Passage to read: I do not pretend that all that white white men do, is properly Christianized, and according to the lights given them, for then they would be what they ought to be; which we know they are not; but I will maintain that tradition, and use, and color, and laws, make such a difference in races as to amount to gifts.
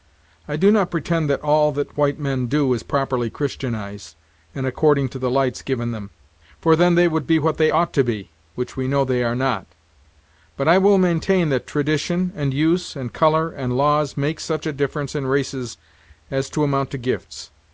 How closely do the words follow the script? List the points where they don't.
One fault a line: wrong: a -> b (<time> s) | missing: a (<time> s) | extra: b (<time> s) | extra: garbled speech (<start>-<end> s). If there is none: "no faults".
missing: white (2.2 s)